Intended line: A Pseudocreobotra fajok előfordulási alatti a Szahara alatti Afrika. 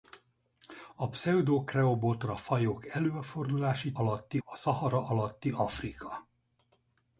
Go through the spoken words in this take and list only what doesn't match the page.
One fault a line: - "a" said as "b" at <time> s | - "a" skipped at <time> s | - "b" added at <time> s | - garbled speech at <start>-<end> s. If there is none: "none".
none